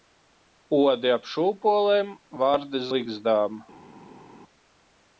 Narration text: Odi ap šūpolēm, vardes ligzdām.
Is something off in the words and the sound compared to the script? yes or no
no